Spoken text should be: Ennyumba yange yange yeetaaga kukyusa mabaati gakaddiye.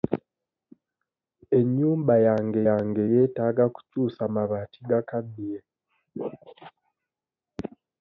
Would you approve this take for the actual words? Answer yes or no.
yes